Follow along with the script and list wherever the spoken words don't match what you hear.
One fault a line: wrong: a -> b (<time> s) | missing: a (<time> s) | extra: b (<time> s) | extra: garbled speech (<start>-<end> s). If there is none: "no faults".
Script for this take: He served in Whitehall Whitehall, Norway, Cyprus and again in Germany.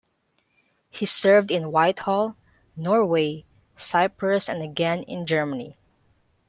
missing: Whitehall (2.4 s)